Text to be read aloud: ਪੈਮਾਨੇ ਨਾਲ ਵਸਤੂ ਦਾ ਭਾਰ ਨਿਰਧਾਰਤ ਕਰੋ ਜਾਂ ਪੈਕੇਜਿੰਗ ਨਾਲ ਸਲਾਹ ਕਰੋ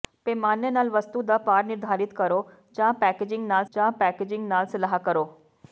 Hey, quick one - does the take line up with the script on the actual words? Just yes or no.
no